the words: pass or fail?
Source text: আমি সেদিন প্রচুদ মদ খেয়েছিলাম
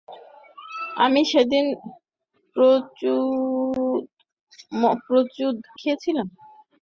fail